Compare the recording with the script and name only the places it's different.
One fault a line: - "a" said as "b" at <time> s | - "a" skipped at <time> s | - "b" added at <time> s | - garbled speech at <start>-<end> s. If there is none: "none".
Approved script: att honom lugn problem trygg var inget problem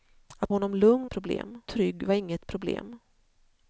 none